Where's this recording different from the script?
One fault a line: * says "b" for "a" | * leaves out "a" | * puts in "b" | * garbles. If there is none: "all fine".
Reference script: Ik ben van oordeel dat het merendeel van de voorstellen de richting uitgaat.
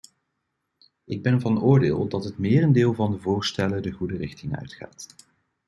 * puts in "goede"